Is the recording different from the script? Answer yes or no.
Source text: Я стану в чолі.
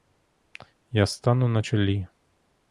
yes